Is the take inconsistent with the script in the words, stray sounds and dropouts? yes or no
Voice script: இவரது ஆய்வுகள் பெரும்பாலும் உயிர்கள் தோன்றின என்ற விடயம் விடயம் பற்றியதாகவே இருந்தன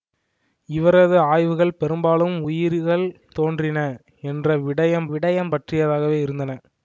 no